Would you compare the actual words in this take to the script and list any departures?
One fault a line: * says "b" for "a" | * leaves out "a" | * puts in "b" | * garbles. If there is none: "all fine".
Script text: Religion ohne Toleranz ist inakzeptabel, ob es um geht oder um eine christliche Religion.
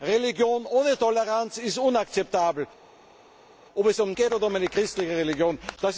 all fine